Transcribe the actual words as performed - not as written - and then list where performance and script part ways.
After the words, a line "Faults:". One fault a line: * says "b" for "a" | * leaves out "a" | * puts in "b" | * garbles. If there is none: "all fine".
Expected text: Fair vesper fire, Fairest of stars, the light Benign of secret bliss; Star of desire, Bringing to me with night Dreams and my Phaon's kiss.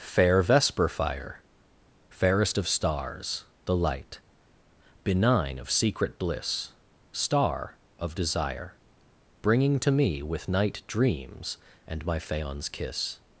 Fair vesper fire, Fairest of stars, the light Benign of secret bliss; Star of desire, Bringing to me with night Dreams and my Phaon's kiss.
Faults:
all fine